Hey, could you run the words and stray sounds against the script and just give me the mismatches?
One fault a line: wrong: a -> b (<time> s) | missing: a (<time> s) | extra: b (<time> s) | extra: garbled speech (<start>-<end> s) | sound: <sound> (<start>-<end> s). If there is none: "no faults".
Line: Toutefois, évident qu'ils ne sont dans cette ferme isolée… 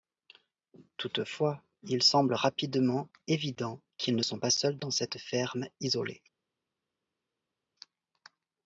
extra: il semble rapidement (1.8 s)
extra: pas seuls (4.4 s)